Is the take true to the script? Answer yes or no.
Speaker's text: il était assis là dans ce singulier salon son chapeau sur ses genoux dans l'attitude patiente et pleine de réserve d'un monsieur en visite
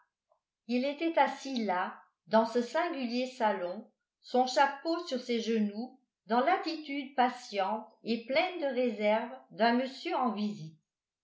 yes